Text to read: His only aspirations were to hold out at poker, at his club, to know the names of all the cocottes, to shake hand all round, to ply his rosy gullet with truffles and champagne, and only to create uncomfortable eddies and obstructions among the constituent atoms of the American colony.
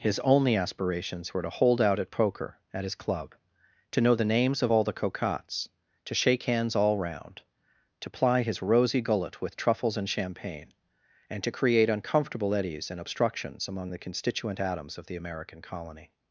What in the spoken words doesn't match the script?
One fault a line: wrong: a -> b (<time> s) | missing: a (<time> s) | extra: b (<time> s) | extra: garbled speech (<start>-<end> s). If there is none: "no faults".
wrong: hand -> hands (6.4 s)
missing: only (11.4 s)